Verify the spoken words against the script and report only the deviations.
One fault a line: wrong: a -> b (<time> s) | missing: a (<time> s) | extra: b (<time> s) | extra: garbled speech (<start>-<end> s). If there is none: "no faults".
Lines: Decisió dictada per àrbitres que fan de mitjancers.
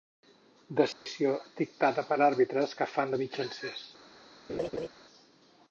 no faults